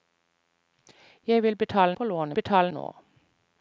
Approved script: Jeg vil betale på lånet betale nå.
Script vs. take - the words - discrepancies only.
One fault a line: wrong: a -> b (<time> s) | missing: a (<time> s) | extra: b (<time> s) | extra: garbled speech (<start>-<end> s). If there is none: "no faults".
no faults